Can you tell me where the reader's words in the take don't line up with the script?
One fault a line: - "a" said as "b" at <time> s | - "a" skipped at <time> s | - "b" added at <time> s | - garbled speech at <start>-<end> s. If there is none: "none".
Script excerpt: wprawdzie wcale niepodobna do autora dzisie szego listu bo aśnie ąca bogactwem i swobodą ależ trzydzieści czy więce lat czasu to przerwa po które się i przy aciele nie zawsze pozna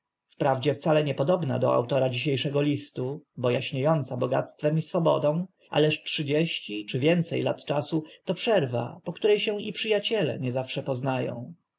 none